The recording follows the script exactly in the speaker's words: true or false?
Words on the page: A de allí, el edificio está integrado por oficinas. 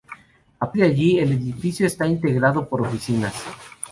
true